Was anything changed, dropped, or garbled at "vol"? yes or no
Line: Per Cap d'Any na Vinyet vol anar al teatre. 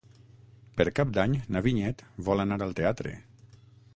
no